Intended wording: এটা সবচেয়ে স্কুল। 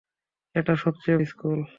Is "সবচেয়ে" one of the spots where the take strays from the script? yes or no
no